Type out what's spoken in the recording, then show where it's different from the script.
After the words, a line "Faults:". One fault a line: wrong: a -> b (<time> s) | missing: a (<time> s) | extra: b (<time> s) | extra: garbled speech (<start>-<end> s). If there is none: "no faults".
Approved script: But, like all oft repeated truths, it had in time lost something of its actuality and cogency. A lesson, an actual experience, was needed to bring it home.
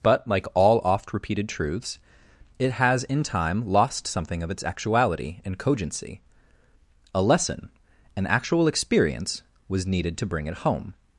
But, like all oft repeated truths, it has in time lost something of its actuality and cogency. A lesson, an actual experience, was needed to bring it home.
Faults:
wrong: had -> has (2.7 s)